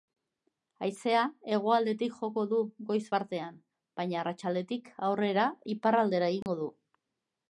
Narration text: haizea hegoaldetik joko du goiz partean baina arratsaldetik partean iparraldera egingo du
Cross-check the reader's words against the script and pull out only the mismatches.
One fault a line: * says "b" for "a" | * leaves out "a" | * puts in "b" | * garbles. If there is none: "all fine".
* says "aurrera" for "partean"